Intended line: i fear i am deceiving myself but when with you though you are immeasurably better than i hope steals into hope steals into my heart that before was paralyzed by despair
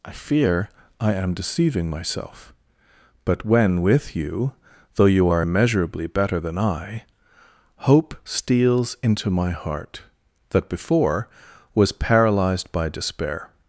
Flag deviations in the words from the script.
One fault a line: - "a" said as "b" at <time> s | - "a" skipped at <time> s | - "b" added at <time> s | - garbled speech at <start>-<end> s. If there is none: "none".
- "hope steals into" skipped at 9.3 s